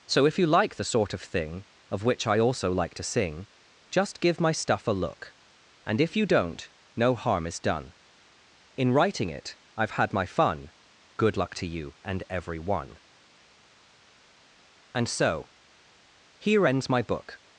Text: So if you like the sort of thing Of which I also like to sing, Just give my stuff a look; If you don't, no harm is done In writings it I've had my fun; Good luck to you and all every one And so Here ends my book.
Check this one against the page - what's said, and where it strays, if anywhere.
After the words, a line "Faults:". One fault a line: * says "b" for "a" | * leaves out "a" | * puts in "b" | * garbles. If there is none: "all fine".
So if you like the sort of thing Of which I also like to sing, Just give my stuff a look; And if you don't, no harm is done In writing it I've had my fun; Good luck to you and every one And so Here ends my book.
Faults:
* puts in "And"
* says "writing" for "writings"
* leaves out "all"